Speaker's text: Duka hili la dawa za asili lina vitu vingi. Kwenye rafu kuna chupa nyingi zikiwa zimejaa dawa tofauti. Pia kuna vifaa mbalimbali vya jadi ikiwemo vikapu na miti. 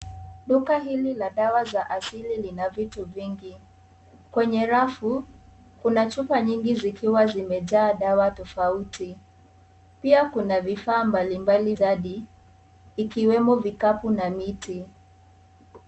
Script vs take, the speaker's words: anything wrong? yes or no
yes